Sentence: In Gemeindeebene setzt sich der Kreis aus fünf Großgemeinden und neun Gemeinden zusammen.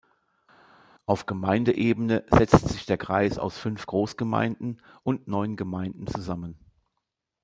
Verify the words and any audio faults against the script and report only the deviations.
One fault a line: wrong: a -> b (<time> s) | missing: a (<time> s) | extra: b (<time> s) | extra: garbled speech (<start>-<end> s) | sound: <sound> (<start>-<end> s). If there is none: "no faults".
wrong: In -> Auf (1.0 s)